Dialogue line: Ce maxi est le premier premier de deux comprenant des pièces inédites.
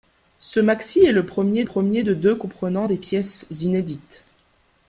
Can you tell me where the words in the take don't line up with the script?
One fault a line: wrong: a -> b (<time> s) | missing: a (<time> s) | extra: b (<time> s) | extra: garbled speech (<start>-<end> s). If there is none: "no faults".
no faults